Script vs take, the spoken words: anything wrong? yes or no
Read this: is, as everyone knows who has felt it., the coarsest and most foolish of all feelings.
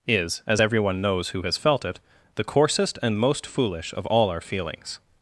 yes